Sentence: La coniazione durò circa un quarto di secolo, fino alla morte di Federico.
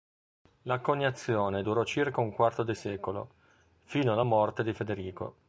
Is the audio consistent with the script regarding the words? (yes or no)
yes